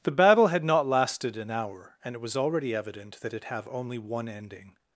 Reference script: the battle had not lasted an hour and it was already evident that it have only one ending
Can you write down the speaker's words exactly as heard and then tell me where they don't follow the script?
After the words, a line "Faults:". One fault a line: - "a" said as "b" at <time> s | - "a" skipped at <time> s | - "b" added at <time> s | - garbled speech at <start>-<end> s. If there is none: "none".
the battle had not lasted an hour and it was already evident that it have only one ending
Faults:
none